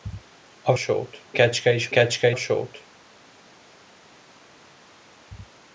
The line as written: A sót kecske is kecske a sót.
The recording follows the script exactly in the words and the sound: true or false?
true